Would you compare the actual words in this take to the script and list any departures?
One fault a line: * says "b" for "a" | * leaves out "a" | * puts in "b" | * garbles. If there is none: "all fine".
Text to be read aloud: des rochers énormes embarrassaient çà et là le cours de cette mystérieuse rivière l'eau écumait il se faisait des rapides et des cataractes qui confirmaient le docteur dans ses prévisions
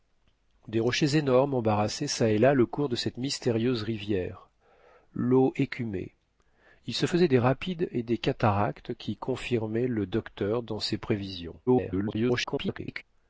* garbles